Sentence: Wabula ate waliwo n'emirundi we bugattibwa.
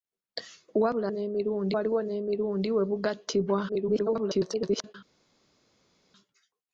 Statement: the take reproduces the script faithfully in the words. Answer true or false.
false